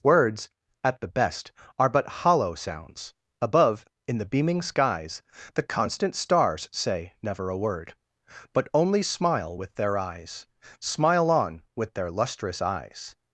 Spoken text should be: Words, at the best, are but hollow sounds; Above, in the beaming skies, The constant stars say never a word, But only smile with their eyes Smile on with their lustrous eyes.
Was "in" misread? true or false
false